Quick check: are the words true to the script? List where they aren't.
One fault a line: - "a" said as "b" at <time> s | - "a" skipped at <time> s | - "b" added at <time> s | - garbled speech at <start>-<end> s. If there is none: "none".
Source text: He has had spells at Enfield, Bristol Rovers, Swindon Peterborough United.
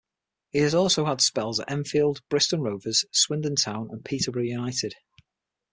- "also" added at 0.7 s
- "Town and" added at 3.5 s